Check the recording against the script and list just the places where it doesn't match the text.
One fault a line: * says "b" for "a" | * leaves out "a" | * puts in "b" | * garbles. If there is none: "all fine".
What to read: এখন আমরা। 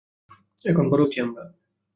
* puts in "বড় হচ্ছি"